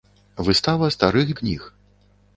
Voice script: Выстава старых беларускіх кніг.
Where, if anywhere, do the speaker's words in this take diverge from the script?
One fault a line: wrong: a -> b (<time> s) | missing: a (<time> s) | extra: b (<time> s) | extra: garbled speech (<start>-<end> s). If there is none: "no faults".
missing: беларускіх (1.3 s)